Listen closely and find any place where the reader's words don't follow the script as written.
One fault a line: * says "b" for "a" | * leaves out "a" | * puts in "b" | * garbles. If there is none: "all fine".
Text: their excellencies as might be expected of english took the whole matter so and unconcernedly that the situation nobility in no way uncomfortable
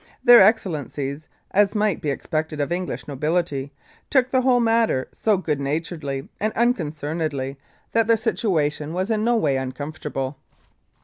* puts in "nobility"
* puts in "good naturedly"
* says "was" for "nobility"